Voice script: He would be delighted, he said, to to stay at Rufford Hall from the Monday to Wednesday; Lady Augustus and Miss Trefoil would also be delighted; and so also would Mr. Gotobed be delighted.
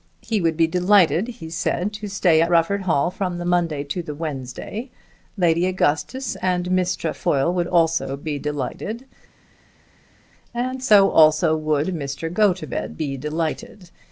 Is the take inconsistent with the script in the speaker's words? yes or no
yes